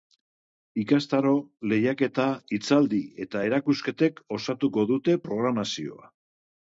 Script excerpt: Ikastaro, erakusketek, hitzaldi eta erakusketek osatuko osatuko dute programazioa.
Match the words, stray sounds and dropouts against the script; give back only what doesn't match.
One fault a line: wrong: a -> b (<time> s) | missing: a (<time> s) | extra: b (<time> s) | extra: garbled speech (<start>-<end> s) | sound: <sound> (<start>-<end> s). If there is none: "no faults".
wrong: erakusketek -> lehiaketa (1.7 s)
missing: osatuko (4.9 s)